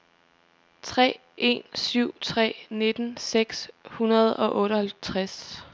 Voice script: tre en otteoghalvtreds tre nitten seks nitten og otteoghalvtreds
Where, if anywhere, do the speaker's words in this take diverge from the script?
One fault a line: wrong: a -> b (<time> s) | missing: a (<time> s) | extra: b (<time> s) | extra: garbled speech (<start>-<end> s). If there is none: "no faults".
wrong: otteoghalvtreds -> syv (1.7 s)
wrong: nitten -> hundrede (3.8 s)